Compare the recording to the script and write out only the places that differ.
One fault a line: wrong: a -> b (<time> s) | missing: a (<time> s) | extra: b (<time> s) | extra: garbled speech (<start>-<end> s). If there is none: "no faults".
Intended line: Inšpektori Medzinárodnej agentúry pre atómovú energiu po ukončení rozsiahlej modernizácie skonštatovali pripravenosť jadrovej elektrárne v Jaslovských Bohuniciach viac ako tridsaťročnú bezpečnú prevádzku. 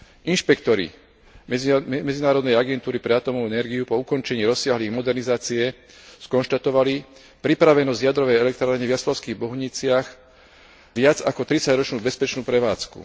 no faults